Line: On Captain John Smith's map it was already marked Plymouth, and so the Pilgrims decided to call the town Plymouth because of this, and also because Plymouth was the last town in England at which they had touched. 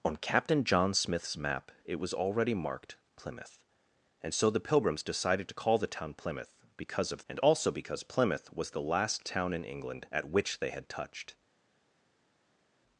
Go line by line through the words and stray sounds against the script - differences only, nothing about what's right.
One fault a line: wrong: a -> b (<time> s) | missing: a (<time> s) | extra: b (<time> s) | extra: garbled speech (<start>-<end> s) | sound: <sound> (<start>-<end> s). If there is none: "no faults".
missing: this (7.2 s)